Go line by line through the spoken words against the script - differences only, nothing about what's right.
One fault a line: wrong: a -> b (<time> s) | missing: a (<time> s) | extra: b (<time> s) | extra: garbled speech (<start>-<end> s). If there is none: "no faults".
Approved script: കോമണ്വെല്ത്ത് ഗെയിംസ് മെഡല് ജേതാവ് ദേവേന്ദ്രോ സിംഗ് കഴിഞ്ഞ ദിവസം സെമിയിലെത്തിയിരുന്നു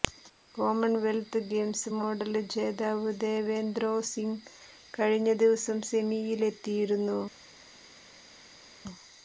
no faults